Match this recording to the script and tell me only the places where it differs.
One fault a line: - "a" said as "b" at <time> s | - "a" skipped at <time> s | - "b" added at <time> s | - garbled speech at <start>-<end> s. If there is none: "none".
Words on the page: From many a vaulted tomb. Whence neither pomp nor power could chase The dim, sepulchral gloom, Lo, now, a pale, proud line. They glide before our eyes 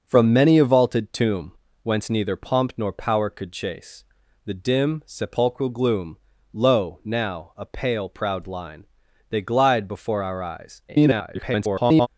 - garbled speech at 10.9-12.1 s